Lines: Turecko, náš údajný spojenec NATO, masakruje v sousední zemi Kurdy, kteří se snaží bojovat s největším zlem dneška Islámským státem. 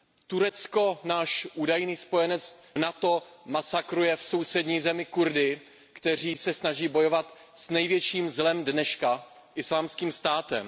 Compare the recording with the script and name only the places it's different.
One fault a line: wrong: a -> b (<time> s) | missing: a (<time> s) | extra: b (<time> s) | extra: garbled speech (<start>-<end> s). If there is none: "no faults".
no faults